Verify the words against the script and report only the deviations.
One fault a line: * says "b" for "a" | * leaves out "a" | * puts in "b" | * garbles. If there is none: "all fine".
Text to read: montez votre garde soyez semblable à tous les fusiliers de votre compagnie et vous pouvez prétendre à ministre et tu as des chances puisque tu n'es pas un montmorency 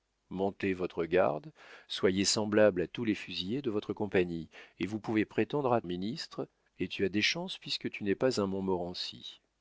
all fine